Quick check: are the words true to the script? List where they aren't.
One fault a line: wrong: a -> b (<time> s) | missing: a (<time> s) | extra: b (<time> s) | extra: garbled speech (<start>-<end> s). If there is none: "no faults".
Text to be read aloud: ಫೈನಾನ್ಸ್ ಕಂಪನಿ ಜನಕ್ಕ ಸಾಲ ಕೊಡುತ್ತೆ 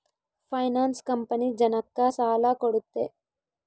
no faults